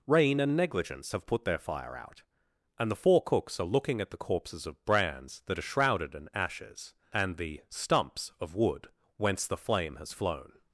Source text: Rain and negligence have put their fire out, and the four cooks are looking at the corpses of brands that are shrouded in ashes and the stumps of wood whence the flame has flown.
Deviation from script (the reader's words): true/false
false